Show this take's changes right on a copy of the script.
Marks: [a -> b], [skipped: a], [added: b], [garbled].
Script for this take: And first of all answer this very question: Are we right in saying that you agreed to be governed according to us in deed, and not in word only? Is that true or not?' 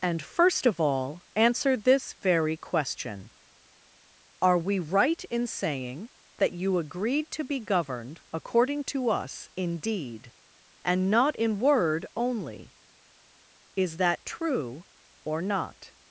And first of all answer this very question: Are we right in saying that you agreed to be governed according to us in deed, and not in word only? Is that true or not?'